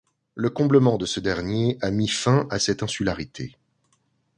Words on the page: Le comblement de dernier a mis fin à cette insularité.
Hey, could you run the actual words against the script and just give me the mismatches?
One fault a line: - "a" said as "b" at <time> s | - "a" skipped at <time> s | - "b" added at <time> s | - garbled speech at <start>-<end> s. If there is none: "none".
- "ce" added at 1.1 s